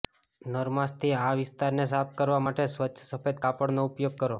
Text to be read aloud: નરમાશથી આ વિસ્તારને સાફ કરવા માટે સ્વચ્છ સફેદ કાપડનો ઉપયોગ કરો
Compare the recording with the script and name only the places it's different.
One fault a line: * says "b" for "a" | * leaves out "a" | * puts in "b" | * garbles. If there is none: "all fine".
all fine